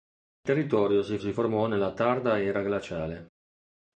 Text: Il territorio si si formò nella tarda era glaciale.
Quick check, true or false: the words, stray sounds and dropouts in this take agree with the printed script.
true